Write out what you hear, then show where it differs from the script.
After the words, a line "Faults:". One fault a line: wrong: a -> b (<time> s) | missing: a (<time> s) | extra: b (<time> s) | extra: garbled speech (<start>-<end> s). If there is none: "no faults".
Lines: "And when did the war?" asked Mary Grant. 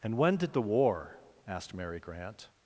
"And when did the war?" asked Mary Grant.
Faults:
no faults